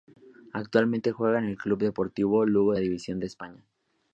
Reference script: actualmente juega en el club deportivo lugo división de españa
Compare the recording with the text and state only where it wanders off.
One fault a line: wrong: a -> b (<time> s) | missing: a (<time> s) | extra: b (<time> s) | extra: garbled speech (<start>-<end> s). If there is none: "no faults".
no faults